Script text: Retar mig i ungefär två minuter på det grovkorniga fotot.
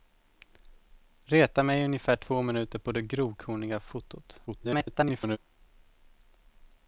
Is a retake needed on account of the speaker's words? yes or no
yes